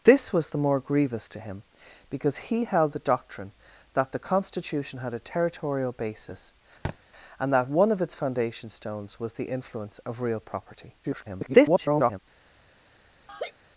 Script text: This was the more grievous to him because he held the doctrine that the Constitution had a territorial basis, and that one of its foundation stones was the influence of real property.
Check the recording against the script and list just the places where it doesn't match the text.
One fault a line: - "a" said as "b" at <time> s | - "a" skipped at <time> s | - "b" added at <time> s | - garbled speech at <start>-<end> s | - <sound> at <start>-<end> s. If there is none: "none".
- thud at 6.8-7.0 s
- garbled speech at 11.0-12.2 s
- laugh at 13.3-13.5 s